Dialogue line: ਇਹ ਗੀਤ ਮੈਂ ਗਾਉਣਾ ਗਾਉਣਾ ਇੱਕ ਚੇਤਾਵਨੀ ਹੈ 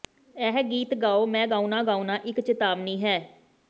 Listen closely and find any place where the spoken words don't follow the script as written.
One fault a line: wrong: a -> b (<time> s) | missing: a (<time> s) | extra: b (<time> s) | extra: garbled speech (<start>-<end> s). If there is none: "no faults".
extra: ਗਾਓ (1.0 s)